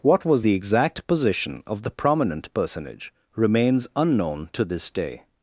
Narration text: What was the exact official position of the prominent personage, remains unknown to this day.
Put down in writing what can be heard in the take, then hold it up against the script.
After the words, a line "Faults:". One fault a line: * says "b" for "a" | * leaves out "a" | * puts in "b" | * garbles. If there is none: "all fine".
What was the exact position of the prominent personage, remains unknown to this day.
Faults:
* leaves out "official"